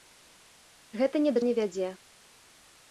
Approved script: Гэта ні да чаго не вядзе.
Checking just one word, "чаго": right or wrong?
wrong